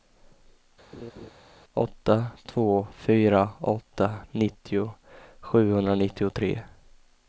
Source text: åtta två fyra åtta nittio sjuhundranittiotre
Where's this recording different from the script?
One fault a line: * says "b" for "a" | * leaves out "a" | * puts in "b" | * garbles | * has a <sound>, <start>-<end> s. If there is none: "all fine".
* has a laugh, 0.9-1.3 s